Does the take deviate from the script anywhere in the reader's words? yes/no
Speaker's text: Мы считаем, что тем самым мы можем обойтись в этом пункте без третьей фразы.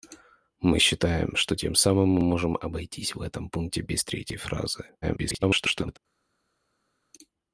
yes